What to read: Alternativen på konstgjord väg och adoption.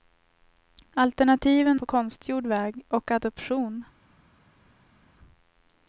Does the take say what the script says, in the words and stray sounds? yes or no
yes